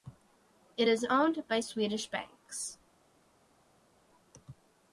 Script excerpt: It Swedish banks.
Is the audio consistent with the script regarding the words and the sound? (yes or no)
no